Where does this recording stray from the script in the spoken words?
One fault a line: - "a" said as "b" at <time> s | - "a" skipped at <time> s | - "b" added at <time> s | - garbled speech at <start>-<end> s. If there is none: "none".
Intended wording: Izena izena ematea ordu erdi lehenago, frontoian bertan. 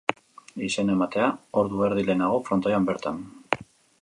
- "izena" skipped at 0.9 s